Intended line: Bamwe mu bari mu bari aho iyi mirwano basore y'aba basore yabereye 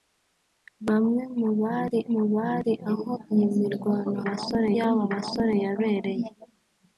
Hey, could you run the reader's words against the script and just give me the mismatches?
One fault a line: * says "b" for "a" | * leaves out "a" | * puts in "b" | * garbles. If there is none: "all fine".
all fine